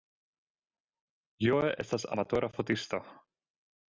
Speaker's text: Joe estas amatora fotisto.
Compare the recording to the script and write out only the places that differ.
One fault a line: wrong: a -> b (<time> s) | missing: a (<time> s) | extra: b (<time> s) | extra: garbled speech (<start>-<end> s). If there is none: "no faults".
no faults